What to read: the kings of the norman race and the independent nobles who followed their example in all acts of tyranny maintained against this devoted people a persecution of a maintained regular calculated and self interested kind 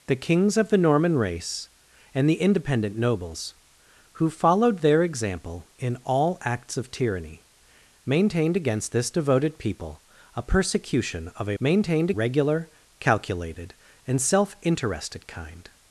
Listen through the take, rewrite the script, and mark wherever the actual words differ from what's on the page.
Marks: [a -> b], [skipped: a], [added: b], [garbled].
the kings of the norman race and the independent nobles who followed their example in all acts of tyranny maintained against this devoted people a persecution of a maintained regular calculated and self interested kind